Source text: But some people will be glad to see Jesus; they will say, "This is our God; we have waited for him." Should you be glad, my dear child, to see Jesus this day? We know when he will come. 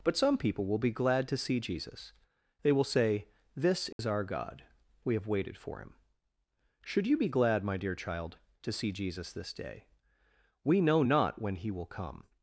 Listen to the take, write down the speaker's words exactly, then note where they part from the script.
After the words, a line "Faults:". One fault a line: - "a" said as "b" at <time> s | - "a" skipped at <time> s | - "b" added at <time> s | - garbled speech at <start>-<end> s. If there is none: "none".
But some people will be glad to see Jesus; they will say, "This is our God; we have waited for him." Should you be glad, my dear child, to see Jesus this day? We know not when he will come.
Faults:
- "not" added at 11.0 s